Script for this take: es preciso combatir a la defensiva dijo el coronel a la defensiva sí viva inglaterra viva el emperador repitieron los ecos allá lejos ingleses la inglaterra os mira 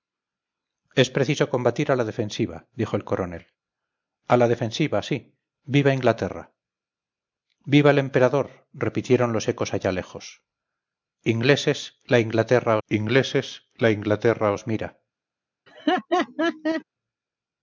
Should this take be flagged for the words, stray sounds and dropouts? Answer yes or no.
yes